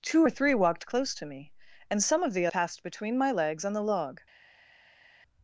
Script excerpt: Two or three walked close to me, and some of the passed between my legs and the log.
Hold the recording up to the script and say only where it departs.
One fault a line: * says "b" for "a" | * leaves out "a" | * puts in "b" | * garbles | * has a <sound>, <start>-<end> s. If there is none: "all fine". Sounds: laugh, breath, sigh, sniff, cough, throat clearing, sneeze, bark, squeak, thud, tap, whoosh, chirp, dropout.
all fine